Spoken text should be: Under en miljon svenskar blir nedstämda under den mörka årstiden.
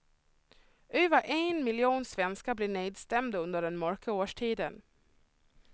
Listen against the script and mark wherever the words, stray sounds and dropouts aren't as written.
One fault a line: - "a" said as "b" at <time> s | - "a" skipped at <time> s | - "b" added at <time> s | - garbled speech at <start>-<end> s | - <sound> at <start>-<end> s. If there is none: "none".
- "Under" said as "Över" at 0.9 s